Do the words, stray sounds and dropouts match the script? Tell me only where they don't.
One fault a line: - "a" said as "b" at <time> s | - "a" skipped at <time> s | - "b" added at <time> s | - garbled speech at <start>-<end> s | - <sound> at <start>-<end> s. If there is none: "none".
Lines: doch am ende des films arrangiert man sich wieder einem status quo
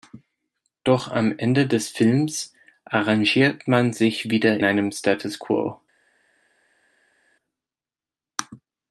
none